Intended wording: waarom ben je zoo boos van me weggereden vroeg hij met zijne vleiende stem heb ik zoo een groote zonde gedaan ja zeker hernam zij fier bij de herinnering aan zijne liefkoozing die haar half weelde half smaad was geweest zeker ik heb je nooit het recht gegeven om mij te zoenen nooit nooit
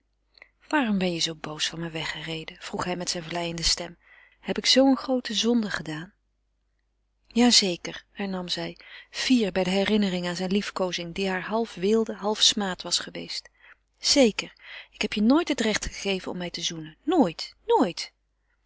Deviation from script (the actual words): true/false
false